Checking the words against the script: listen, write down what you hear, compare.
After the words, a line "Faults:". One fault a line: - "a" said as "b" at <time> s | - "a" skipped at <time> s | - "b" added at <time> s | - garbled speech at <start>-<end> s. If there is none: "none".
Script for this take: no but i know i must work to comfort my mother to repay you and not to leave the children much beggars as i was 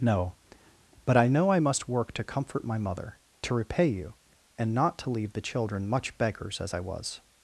no but i know i must work to comfort my mother to repay you and not to leave the children much beggars as i was
Faults:
none